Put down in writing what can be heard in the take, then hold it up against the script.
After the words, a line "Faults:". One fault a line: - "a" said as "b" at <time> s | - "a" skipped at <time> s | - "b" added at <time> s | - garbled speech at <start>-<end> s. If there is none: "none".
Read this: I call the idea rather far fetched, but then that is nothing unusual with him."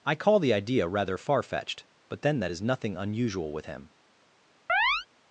I call the idea rather far fetched, but then that is nothing unusual with him."
Faults:
none